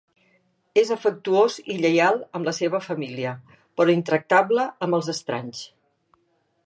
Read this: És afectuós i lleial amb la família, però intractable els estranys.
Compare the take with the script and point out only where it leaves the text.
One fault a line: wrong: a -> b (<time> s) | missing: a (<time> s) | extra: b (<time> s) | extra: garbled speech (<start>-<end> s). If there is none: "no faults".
extra: seva (2.6 s)
extra: amb (4.9 s)